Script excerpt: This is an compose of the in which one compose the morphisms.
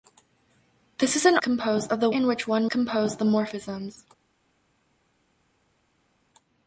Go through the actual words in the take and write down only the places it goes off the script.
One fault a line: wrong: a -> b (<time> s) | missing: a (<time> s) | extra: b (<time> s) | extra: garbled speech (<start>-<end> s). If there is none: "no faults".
no faults